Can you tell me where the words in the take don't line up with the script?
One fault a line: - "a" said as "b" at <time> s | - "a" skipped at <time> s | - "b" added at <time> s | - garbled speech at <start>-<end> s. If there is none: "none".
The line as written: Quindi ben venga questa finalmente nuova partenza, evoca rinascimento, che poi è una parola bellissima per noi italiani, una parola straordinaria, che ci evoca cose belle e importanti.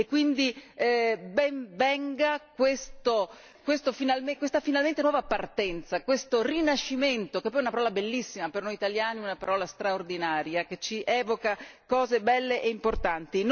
- "evoca" said as "questo" at 6.0 s